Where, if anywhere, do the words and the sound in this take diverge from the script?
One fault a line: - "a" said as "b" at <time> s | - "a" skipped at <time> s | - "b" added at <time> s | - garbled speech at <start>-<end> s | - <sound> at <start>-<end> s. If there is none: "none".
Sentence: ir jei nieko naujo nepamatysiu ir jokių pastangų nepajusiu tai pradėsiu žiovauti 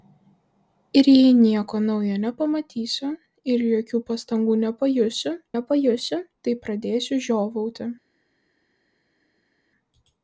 - "nepajusiu" added at 5.5 s